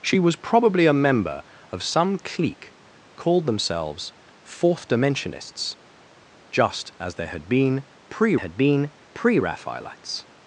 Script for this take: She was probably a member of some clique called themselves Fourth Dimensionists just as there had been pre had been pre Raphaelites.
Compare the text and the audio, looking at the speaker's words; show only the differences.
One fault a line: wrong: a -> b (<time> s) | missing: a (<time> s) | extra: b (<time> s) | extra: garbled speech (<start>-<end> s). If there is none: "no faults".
no faults